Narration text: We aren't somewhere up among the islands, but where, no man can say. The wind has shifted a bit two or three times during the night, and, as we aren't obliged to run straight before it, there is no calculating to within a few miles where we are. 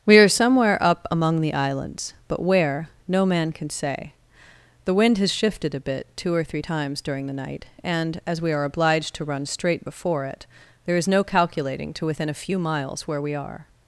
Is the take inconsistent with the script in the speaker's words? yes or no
yes